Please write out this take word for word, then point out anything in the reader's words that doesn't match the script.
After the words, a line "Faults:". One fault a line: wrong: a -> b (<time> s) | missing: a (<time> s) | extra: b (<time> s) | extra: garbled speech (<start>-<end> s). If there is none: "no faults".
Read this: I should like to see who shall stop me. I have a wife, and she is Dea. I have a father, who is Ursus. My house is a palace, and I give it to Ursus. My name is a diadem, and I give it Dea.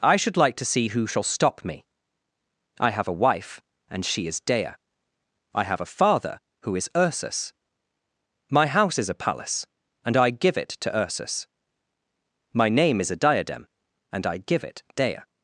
I should like to see who shall stop me. I have a wife, and she is Dea. I have a father, who is Ursus. My house is a palace, and I give it to Ursus. My name is a diadem, and I give it Dea.
Faults:
no faults